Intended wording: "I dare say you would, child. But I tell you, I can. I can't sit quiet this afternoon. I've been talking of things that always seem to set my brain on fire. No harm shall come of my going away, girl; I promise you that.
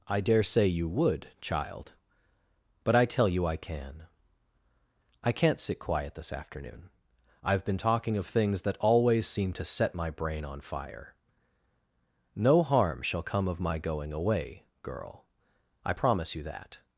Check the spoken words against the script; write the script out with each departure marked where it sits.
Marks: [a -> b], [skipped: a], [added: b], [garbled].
"I dare say you would, child. But I tell you, I can. I can't sit quiet this afternoon. I've been talking of things that always seem to set my brain on fire. No harm shall come of my going away, girl; I promise you that.